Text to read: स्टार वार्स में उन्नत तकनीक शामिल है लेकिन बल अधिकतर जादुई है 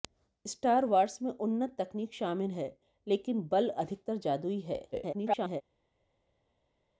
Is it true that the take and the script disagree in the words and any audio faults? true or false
true